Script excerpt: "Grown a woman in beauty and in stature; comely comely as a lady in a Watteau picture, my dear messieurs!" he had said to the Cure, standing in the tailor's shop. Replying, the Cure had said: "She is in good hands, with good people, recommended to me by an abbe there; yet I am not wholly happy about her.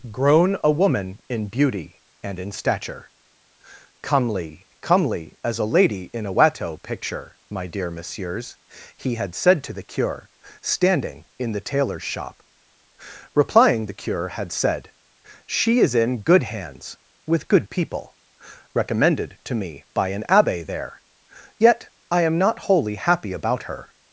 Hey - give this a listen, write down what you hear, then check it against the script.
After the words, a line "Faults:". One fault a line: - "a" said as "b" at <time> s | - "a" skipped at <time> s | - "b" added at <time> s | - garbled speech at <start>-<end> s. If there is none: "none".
"Grown a woman in beauty and in stature; comely comely as a lady in a Watteau picture, my dear messieurs!" he had said to the Cure, standing in the tailor's shop. Replying, the Cure had said: "She is in good hands, with good people, recommended to me by an abbe there; yet I am not wholly happy about her.
Faults:
none